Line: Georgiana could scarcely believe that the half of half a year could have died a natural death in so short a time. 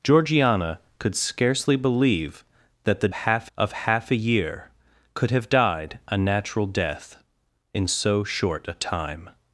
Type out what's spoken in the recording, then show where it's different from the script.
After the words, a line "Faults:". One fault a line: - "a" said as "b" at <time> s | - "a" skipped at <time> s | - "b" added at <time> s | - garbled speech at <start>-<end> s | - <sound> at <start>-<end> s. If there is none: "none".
Georgiana could scarcely believe that the half of half a year could have died a natural death in so short a time.
Faults:
none